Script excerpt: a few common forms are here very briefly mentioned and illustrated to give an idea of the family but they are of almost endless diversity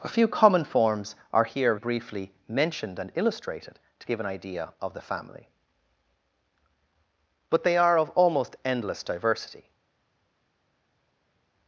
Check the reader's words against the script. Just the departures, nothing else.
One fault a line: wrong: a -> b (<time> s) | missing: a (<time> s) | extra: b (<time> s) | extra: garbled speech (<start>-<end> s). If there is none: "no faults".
missing: very (1.8 s)